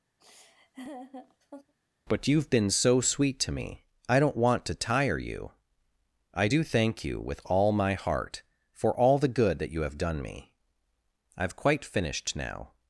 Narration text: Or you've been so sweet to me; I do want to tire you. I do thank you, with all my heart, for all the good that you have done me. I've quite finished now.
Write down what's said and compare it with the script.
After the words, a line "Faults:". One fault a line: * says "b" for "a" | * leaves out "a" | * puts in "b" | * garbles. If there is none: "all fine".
But you've been so sweet to me; I don't want to tire you. I do thank you, with all my heart, for all the good that you have done me. I've quite finished now.
Faults:
* says "But" for "Or"
* says "don't" for "do"